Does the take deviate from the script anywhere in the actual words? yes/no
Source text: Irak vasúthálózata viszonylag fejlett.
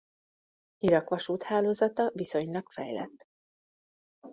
no